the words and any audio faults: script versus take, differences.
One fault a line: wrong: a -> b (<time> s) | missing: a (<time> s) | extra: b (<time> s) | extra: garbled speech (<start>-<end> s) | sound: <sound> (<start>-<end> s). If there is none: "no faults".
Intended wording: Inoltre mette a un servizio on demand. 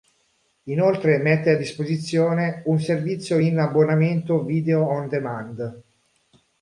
extra: disposizione (1.6 s)
extra: in abbonamento video (3.4 s)